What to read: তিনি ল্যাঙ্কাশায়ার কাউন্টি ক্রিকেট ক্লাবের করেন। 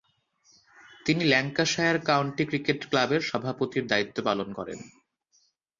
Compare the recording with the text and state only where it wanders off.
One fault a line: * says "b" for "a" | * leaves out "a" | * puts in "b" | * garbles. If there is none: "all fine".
* puts in "সভাপতির দায়িত্ব পালন"